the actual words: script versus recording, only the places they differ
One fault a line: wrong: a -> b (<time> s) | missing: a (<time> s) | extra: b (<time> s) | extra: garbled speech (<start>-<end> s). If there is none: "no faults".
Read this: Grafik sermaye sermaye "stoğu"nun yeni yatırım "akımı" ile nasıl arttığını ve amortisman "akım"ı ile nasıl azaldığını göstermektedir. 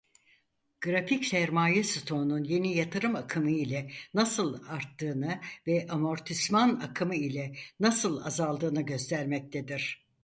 missing: sermaye (1.8 s)